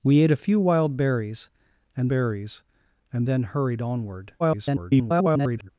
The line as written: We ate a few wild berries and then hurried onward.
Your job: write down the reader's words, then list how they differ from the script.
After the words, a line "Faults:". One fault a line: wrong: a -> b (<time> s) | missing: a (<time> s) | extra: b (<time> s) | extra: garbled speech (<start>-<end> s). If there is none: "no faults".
We ate a few wild berries and berries and then hurried onward. [garbled]
Faults:
extra: berries and (2.1 s)
extra: garbled speech (4.4-5.7 s)